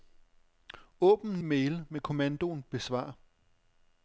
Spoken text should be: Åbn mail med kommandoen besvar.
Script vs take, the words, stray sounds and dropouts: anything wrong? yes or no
no